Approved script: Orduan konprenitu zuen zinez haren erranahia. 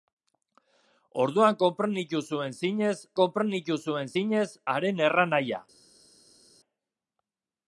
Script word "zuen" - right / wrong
right